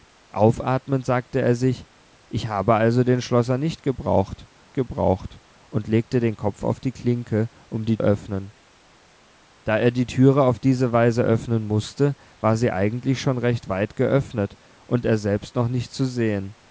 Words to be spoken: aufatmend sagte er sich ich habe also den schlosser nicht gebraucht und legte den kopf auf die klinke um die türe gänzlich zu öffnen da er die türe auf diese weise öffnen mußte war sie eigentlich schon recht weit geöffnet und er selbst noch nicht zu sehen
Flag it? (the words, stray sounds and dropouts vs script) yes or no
yes